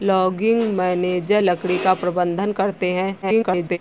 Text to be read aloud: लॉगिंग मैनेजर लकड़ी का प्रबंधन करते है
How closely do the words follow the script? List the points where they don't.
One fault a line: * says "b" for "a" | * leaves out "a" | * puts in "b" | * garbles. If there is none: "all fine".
* garbles